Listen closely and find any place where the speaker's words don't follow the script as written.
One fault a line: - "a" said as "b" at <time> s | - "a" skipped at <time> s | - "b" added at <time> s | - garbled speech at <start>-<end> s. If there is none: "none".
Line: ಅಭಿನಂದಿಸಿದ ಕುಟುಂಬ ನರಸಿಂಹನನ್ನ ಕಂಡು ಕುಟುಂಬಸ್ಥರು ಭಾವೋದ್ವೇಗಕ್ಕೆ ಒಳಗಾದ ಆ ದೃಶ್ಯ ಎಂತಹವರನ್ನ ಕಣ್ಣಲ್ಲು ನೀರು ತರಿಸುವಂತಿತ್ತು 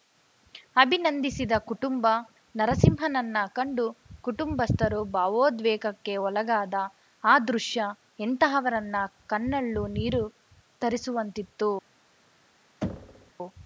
none